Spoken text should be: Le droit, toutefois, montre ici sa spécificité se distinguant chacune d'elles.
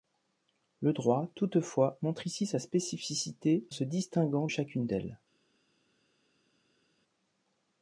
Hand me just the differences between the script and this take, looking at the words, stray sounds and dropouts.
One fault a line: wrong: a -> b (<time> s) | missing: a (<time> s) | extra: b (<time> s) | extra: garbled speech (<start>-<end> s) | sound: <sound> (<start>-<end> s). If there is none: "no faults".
no faults